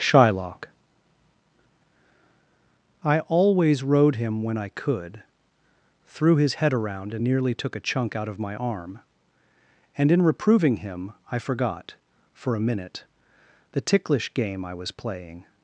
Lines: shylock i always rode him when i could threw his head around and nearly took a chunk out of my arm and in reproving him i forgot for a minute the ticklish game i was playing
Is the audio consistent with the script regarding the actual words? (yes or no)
yes